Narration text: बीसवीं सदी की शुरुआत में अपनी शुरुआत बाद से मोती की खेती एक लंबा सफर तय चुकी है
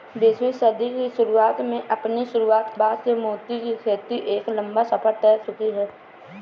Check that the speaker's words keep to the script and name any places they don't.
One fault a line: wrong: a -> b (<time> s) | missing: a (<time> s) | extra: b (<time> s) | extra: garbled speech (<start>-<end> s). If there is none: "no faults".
no faults